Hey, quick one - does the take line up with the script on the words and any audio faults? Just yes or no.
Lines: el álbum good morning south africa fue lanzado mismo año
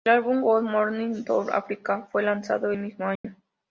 no